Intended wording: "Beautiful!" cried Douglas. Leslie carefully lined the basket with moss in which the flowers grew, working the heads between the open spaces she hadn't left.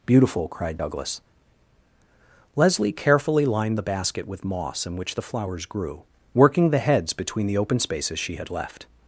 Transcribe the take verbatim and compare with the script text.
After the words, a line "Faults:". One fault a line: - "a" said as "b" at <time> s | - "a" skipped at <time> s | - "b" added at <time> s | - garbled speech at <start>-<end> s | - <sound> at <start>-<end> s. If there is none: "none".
"Beautiful!" cried Douglas. Leslie carefully lined the basket with moss in which the flowers grew, working the heads between the open spaces she had left.
Faults:
- "hadn't" said as "had" at 8.4 s